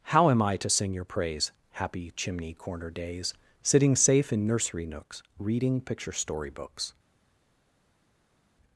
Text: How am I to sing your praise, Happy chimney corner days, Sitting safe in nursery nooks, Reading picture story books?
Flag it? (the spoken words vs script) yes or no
no